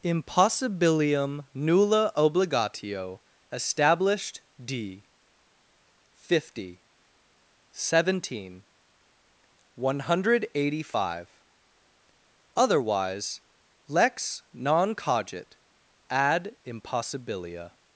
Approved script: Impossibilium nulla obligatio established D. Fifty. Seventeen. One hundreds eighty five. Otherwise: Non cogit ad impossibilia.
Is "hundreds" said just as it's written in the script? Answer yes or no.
no